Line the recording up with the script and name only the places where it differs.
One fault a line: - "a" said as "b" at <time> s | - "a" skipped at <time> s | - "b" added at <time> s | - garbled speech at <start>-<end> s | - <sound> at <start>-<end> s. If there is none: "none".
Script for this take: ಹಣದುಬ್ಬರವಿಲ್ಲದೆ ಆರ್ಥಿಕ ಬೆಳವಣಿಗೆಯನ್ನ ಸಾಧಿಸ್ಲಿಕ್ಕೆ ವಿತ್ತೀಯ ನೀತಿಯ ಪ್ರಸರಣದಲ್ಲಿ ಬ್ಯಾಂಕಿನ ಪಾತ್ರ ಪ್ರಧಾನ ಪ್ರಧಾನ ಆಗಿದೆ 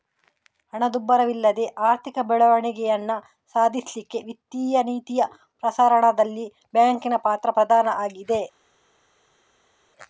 - "ಪ್ರಧಾನ" skipped at 7.9 s